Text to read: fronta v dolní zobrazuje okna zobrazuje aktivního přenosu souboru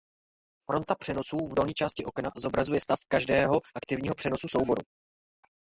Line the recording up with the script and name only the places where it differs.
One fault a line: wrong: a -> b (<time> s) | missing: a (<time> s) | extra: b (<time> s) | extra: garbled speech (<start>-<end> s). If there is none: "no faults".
extra: přenosů (0.9 s)
wrong: zobrazuje -> části (1.7 s)
extra: stav každého (2.8 s)